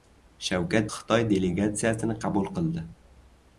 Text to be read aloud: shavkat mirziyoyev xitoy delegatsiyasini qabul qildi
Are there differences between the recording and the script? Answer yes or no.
yes